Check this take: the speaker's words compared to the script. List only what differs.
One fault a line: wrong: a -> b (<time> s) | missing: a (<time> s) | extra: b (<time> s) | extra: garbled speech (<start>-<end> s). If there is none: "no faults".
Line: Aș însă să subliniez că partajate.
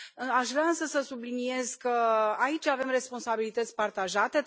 extra: vrea (0.5 s)
extra: aici avem responsabilități (2.4 s)